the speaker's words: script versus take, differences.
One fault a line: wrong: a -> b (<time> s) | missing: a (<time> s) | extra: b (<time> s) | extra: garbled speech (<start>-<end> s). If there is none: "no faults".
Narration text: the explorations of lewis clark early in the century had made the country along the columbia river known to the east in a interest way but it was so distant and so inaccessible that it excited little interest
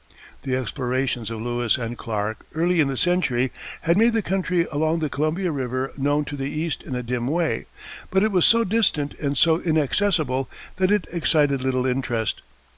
extra: and (1.8 s)
wrong: interest -> dim (7.0 s)